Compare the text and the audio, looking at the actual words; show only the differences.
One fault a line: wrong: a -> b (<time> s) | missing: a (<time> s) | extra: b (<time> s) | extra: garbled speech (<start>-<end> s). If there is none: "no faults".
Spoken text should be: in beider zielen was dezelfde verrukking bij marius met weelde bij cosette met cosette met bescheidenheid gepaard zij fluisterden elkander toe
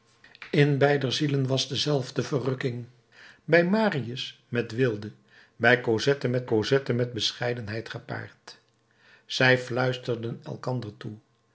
no faults